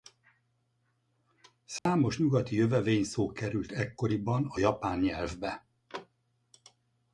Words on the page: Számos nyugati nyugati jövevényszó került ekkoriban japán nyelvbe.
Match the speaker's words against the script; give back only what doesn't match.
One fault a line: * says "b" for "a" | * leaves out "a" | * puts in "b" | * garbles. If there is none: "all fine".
* leaves out "nyugati"
* puts in "a"